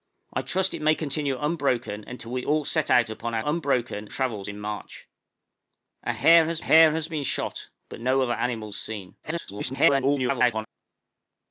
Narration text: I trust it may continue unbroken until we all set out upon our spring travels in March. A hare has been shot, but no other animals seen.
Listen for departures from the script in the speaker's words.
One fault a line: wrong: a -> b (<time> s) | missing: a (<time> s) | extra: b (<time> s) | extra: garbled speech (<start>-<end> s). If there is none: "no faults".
wrong: spring -> unbroken (3.4 s)
extra: hare has (6.6 s)
extra: garbled speech (9.2-10.7 s)